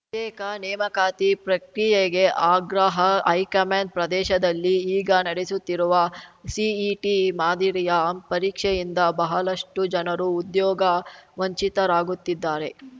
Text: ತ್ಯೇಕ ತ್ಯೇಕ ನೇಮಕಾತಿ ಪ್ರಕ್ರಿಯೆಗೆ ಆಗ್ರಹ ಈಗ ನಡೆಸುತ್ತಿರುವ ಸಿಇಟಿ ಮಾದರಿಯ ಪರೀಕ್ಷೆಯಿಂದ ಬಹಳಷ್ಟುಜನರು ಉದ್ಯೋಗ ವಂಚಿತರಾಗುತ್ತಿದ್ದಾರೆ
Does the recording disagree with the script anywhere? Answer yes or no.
yes